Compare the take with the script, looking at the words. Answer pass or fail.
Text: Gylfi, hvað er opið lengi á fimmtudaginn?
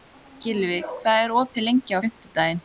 pass